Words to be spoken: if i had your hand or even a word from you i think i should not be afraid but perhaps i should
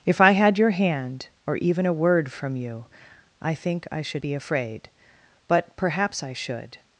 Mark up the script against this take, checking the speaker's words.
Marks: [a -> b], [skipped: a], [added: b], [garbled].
if i had your hand or even a word from you i think i should [skipped: not] be afraid but perhaps i should